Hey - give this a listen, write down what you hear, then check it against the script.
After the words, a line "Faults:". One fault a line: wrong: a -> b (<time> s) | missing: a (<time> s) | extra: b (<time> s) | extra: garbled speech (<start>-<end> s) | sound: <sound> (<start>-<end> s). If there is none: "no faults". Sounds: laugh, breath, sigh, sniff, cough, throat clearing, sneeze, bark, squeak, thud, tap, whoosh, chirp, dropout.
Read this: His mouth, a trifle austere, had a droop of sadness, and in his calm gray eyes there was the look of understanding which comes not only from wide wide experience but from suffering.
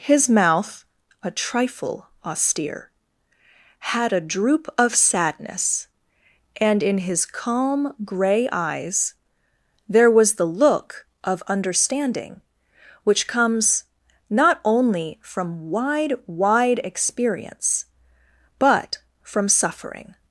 His mouth, a trifle austere, had a droop of sadness, and in his calm gray eyes there was the look of understanding which comes not only from wide wide experience but from suffering.
Faults:
no faults